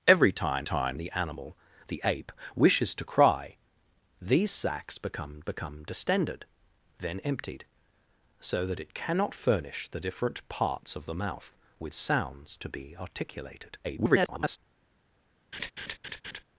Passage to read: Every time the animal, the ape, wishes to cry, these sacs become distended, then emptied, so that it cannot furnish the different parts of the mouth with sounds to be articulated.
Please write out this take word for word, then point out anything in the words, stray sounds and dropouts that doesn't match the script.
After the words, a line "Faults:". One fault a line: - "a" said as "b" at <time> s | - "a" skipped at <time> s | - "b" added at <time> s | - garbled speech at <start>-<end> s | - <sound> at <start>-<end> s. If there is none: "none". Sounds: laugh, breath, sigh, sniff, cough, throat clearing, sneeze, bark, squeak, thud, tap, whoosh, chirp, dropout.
Every time time the animal, the ape, wishes to cry, these sacs become become distended, then emptied, so that it cannot furnish the different parts of the mouth with sounds to be articulated. [garbled]
Faults:
- "time" added at 0.6 s
- "become" added at 5.4 s
- garbled speech at 13.8-14.6 s
- laugh at 15.5-16.4 s